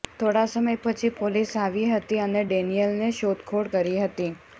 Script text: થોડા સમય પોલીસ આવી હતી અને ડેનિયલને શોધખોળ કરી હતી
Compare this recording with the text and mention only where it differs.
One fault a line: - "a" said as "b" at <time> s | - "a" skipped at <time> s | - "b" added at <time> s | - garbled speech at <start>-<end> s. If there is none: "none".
- "પછી" added at 0.8 s